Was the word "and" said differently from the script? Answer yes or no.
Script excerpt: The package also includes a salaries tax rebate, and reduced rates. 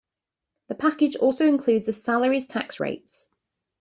yes